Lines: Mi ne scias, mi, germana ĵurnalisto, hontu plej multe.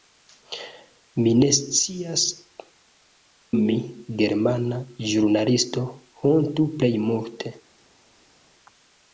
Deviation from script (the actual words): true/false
false